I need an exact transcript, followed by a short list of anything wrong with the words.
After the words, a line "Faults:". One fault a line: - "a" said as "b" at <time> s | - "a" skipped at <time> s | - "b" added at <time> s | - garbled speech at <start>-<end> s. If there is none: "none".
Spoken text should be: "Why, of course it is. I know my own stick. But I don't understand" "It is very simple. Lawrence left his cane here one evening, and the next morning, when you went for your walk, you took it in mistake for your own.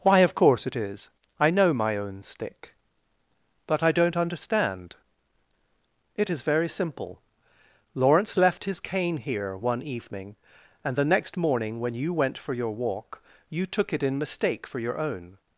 "Why, of course it is. I know my own stick. But I don't understand" "It is very simple. Lawrence left his cane here one evening, and the next morning, when you went for your walk, you took it in mistake for your own.
Faults:
none